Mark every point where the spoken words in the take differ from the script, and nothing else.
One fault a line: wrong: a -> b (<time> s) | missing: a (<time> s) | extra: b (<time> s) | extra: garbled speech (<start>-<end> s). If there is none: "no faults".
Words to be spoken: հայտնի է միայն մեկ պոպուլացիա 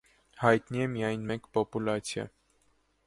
no faults